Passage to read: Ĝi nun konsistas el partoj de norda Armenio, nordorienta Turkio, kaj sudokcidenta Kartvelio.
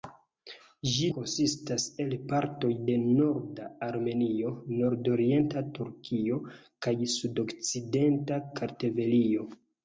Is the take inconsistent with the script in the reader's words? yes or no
yes